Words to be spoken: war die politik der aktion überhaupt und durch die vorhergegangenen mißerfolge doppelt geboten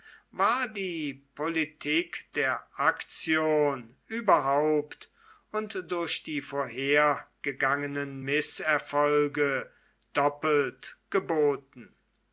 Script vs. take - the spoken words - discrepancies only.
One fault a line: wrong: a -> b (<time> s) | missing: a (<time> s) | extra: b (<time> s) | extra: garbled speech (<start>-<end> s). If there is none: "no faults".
no faults